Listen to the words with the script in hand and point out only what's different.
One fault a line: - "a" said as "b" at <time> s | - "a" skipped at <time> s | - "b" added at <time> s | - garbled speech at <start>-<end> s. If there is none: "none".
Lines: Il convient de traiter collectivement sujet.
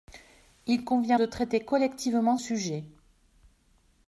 none